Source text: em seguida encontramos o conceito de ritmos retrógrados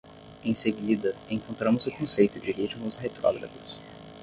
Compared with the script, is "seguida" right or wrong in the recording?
right